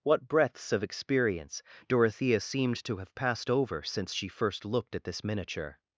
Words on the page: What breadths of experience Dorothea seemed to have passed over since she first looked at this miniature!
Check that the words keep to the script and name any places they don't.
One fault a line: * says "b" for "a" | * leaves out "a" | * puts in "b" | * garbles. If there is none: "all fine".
all fine